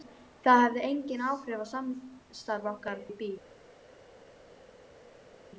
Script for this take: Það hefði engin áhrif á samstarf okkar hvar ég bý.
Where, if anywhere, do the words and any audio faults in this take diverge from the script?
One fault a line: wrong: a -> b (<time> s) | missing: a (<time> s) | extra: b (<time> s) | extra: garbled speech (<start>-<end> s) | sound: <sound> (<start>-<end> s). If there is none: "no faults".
missing: hvar (3.0 s)